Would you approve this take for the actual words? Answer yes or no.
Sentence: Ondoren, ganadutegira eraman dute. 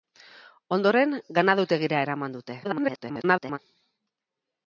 no